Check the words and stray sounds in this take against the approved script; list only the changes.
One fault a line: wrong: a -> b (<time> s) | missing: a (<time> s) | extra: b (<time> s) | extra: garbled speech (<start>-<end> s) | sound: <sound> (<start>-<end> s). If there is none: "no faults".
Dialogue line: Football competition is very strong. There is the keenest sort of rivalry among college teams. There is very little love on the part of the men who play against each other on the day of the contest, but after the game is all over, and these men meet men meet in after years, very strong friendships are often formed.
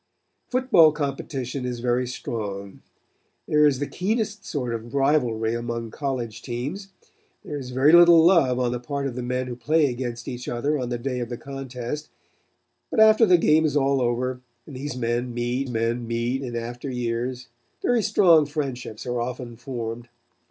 no faults